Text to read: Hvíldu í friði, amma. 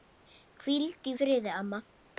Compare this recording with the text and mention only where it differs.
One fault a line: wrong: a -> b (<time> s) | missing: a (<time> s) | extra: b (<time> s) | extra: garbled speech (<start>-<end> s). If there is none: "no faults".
no faults